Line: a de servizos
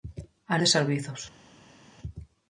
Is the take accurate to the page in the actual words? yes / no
yes